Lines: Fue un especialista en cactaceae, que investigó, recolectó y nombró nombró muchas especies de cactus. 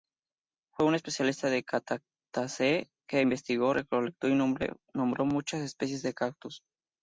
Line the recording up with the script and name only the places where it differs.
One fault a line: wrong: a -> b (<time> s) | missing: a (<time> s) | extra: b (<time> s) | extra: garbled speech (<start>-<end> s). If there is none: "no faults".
missing: nombró (5.3 s)